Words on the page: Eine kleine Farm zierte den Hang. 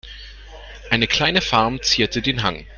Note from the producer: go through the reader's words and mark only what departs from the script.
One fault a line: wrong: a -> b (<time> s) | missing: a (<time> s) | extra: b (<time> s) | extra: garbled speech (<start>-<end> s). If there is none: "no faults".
no faults